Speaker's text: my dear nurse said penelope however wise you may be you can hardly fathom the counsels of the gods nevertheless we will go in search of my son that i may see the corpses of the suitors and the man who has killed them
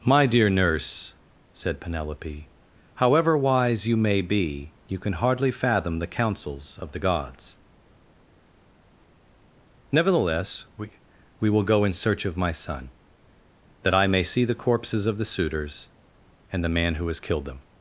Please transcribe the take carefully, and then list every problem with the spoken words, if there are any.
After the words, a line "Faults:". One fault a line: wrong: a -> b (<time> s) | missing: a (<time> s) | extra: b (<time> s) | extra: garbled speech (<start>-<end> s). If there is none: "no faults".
my dear nurse said penelope however wise you may be you can hardly fathom the counsels of the gods nevertheless we we will go in search of my son that i may see the corpses of the suitors and the man who has killed them
Faults:
extra: we (11.4 s)